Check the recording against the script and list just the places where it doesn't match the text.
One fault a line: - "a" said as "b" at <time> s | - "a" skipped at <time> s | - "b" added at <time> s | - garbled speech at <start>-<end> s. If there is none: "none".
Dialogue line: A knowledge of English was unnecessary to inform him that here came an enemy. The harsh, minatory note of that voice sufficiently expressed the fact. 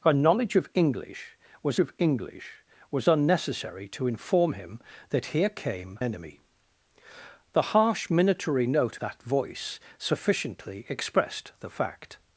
- "of English was" added at 1.8 s
- "an" skipped at 6.0 s
- "of" skipped at 9.0 s